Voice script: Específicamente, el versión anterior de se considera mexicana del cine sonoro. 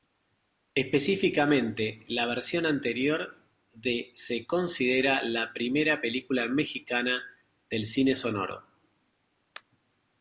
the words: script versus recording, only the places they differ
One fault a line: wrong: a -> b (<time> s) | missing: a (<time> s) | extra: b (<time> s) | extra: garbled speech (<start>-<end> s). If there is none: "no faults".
wrong: el -> la (2.1 s)
extra: la primera película (5.2 s)